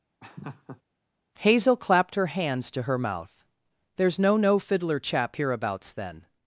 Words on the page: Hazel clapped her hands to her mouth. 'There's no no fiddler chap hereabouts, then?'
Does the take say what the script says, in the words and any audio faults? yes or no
no